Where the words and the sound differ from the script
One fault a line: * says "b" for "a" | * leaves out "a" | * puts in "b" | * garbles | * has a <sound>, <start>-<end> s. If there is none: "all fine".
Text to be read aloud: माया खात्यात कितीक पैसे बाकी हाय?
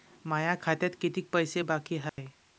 * has a dropout, 2.1-2.2 s